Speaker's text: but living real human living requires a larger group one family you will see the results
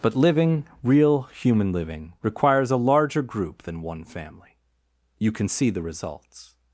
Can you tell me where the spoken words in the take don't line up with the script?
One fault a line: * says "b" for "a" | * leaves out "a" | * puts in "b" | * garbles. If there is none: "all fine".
* puts in "than"
* says "can" for "will"